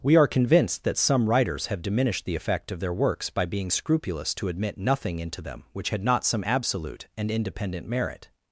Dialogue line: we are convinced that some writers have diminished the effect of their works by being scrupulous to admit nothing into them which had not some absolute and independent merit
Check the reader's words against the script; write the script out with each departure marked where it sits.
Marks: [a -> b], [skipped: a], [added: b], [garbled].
we are convinced that some writers have diminished the effect of their works by being scrupulous to admit nothing into them which had not some absolute and independent merit